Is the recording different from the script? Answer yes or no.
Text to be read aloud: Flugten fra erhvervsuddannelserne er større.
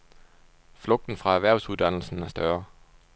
no